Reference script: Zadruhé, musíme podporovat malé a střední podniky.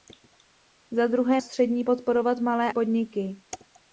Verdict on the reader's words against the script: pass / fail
fail